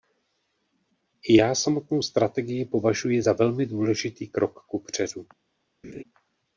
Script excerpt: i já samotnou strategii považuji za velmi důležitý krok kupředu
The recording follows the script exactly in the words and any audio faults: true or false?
false